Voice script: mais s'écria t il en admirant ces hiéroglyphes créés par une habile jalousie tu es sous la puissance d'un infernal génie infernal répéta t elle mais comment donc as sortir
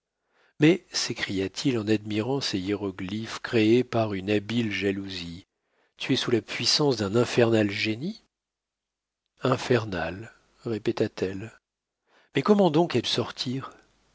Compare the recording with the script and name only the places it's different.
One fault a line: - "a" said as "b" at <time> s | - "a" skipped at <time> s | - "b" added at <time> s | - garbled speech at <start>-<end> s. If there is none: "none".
none